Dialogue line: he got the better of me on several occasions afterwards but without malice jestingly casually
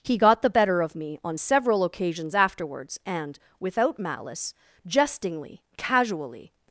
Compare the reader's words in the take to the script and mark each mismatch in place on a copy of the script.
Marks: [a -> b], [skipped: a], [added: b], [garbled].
he got the better of me on several occasions afterwards [but -> and] without malice jestingly casually